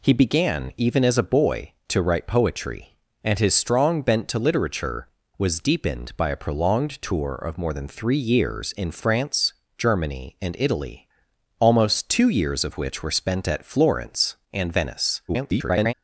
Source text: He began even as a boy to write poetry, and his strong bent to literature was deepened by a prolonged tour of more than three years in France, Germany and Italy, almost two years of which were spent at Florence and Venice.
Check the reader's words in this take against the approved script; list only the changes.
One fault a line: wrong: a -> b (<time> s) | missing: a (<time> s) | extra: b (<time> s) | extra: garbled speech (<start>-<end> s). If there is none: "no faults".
extra: garbled speech (15.3-15.9 s)